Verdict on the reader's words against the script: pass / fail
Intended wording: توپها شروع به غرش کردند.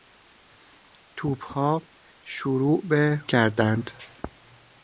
fail